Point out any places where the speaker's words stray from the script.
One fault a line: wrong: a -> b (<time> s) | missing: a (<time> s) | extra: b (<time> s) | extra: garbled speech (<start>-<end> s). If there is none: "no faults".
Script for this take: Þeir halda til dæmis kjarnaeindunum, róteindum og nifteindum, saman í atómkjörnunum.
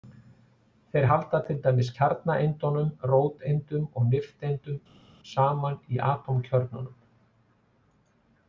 no faults